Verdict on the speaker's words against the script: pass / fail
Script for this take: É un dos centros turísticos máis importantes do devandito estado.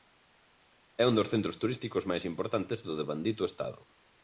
pass